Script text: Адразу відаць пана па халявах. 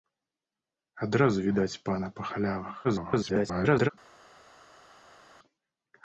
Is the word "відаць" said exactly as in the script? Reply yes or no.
yes